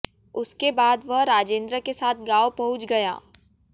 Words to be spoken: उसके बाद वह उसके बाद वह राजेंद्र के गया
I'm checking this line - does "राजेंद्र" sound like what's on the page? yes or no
no